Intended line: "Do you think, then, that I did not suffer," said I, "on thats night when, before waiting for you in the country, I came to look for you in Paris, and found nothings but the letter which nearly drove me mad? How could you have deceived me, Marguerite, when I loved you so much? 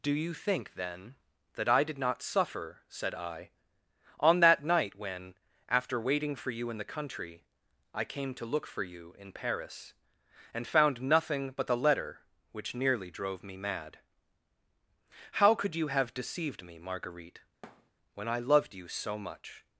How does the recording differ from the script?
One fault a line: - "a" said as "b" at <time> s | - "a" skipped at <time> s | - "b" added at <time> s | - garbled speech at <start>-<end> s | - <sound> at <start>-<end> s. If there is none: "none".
- "thats" said as "that" at 4.4 s
- "before" said as "after" at 5.7 s
- "nothings" said as "nothing" at 11.0 s
- thud at 17.6-17.9 s